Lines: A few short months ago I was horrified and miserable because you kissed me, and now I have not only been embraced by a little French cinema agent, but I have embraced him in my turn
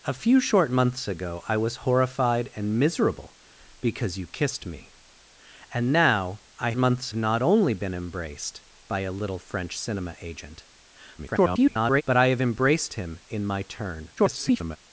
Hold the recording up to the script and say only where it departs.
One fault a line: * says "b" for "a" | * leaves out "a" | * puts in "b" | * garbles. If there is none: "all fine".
* says "months" for "have"
* garbles
* garbles